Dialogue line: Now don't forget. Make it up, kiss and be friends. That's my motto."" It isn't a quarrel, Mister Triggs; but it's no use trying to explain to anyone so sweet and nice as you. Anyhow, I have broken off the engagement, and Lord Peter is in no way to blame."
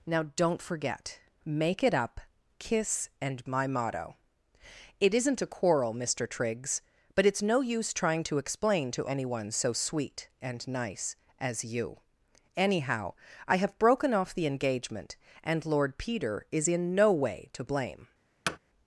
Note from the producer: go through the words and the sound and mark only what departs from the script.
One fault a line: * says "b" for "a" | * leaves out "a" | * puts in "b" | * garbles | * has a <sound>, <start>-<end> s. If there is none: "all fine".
* leaves out "be friends That's"
* has a thud, 18.5-18.6 s